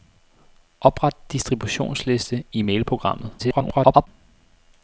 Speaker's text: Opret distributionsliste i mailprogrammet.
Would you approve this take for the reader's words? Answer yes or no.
no